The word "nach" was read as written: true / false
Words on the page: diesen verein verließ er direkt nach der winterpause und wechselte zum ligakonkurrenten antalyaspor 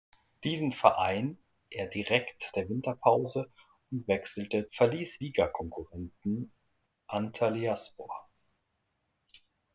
false